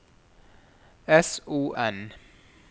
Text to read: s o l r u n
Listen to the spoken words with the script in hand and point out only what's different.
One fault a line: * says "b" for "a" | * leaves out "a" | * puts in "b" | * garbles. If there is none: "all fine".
* leaves out "l r u"